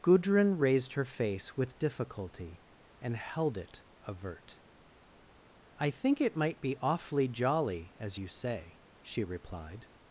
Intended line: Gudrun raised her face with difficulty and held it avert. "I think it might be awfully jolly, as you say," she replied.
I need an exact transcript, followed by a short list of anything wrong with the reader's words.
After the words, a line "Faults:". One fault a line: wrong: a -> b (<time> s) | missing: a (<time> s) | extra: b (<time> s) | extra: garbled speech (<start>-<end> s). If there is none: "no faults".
Gudrun raised her face with difficulty and held it avert. "I think it might be awfully jolly, as you say," she replied.
Faults:
no faults